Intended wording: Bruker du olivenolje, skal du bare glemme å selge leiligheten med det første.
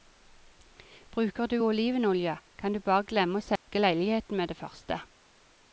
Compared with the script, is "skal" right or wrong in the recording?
wrong